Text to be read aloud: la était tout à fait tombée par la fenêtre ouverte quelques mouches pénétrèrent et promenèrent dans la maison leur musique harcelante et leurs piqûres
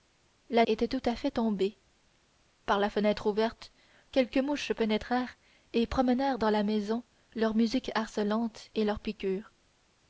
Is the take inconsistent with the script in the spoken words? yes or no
no